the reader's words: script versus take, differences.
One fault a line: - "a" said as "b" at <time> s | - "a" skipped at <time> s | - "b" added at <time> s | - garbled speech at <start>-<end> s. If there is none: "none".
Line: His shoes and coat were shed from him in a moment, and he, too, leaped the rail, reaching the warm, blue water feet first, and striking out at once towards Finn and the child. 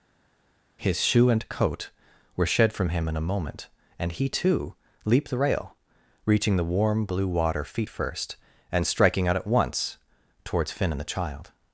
- "shoes" said as "shoe" at 1.0 s